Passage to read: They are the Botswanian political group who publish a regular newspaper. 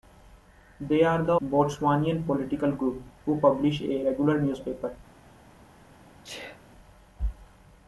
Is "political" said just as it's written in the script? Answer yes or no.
yes